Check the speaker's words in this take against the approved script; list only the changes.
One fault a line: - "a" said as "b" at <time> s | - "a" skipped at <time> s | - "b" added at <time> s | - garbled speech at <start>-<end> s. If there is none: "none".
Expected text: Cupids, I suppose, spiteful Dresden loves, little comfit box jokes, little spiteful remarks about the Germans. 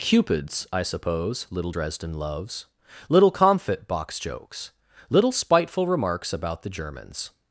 - "spiteful" said as "little" at 1.5 s